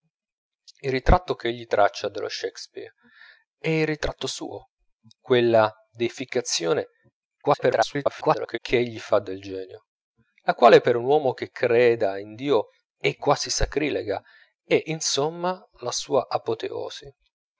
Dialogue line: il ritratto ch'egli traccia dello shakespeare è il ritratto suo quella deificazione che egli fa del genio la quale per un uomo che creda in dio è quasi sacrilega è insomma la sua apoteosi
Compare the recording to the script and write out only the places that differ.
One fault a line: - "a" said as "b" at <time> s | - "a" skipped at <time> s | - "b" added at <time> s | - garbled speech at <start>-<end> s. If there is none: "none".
- garbled speech at 7.4-8.6 s